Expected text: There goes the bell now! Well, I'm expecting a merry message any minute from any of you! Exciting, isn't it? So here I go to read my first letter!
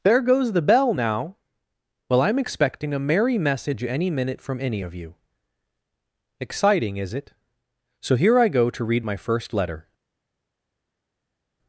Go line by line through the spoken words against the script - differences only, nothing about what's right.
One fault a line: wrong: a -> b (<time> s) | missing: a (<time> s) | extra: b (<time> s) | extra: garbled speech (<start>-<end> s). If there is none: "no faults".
wrong: isn't -> is (7.0 s)